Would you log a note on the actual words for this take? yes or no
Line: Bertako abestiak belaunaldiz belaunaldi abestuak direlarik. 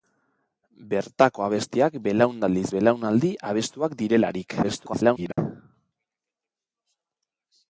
yes